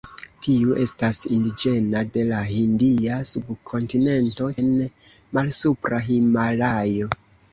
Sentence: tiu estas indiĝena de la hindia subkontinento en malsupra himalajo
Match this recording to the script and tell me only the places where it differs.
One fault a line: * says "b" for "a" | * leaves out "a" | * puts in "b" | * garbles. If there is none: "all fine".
all fine